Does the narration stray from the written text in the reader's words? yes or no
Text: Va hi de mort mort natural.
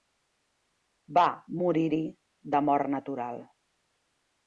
yes